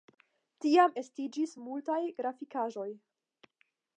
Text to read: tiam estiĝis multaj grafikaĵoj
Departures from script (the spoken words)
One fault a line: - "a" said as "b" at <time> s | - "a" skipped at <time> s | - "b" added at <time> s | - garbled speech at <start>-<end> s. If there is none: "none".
none